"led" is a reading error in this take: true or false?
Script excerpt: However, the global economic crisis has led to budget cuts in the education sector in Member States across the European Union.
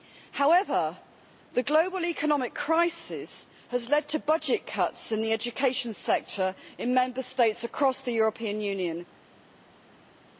false